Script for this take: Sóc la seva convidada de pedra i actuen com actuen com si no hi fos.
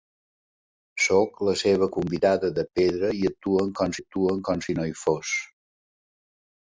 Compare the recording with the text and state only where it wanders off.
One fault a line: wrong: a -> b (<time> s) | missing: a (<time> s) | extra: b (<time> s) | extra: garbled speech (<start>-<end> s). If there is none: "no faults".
no faults